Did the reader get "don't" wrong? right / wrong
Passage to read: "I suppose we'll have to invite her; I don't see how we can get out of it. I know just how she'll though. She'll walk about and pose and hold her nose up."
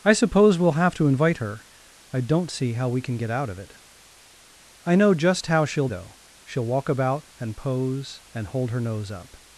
right